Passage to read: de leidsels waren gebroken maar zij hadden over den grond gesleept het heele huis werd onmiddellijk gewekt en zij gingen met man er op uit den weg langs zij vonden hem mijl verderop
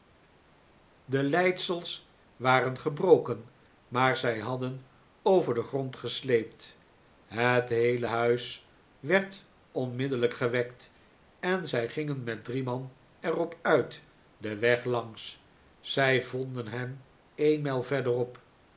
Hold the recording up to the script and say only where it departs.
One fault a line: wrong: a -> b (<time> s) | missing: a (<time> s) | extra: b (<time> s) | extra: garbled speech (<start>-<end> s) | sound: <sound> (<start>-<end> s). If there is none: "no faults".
extra: drie (12.4 s)
extra: een (17.3 s)